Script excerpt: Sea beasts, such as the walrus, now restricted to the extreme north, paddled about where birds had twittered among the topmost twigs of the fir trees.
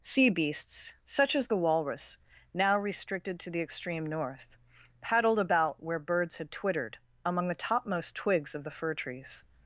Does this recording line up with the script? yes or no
yes